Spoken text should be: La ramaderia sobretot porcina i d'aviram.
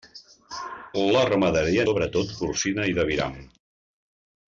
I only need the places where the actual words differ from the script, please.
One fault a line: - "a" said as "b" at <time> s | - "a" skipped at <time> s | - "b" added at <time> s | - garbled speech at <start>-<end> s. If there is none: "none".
none